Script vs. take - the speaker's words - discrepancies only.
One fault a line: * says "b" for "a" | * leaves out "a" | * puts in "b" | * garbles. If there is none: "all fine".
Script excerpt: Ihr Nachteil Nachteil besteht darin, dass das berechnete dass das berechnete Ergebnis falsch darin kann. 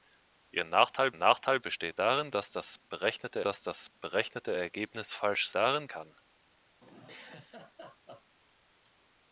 all fine